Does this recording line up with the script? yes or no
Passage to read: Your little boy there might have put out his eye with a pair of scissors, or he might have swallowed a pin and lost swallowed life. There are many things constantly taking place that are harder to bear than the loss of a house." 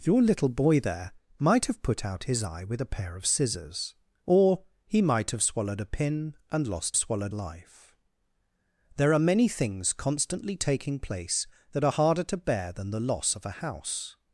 yes